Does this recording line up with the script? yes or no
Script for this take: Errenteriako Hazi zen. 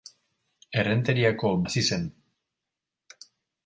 yes